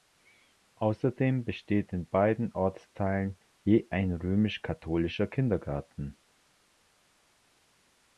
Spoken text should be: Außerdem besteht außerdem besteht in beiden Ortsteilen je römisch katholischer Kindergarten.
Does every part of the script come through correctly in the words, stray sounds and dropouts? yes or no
no